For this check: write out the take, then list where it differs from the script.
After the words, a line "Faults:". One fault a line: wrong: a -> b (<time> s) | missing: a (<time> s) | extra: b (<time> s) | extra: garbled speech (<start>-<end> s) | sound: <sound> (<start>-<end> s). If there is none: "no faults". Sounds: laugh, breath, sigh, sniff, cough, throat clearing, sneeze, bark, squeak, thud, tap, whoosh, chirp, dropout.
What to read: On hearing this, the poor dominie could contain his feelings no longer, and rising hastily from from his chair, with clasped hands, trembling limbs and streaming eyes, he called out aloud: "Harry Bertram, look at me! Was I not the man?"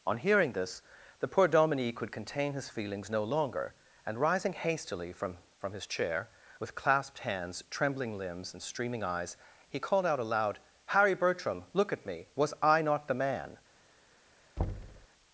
On hearing this, the poor dominie could contain his feelings no longer, and rising hastily from from his chair, with clasped hands, trembling limbs and streaming eyes, he called out aloud: "Harry Bertram, look at me! Was I not the man?"
Faults:
sound: thud (14.6-15.1 s)